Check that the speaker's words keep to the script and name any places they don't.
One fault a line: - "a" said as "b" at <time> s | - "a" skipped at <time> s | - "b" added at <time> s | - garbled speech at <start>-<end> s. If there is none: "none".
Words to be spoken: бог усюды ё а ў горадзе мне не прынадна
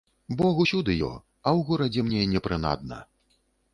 none